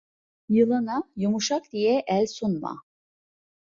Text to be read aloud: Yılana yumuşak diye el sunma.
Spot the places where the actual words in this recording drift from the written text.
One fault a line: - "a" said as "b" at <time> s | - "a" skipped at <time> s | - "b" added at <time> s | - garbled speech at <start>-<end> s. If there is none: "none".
none